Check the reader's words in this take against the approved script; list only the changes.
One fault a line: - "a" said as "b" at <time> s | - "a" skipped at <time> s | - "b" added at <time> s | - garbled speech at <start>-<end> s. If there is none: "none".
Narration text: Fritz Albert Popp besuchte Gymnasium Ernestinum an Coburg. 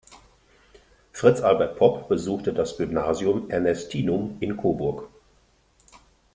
- "das" added at 2.5 s
- "an" said as "in" at 4.4 s